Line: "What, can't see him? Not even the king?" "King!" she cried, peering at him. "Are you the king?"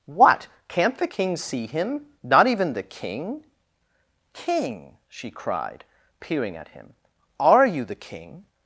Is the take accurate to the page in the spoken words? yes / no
no